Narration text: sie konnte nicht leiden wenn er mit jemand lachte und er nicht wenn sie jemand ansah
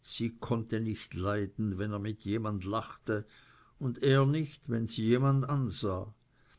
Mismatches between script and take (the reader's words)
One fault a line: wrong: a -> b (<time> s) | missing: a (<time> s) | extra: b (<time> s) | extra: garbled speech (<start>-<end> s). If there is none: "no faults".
no faults